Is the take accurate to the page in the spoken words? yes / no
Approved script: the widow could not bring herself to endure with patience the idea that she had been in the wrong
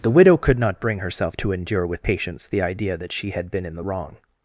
yes